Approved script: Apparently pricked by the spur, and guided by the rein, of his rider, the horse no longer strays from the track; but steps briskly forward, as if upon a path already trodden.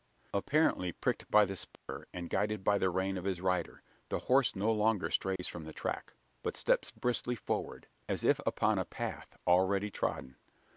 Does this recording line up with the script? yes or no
yes